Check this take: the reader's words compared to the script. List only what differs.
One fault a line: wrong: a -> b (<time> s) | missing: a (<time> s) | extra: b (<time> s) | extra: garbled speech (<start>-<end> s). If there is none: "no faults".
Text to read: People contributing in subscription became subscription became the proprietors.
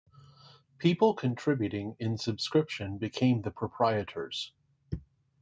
missing: subscription became (3.4 s)